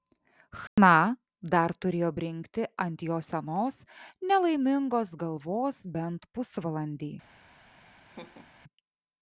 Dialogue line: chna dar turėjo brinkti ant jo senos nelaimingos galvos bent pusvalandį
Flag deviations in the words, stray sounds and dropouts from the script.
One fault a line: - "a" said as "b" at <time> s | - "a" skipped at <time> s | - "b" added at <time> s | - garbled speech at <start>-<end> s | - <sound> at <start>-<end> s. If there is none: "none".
- dropout at 0.7-0.8 s
- laugh at 7.7-8.5 s